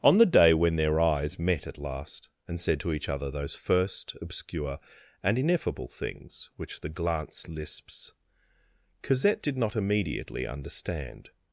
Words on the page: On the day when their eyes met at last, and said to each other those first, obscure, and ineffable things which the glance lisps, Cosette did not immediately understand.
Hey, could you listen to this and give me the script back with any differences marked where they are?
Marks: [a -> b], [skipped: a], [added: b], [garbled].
On the day when their eyes met at last, and said to each other those first, obscure, and ineffable things which the glance lisps, Cosette did not immediately understand.